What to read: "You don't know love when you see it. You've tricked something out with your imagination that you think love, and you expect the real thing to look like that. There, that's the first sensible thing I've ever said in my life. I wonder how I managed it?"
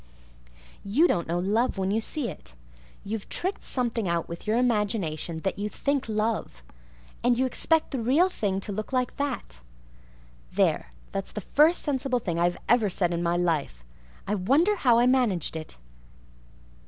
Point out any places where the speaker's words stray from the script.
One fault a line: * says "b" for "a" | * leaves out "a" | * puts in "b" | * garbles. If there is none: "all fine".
all fine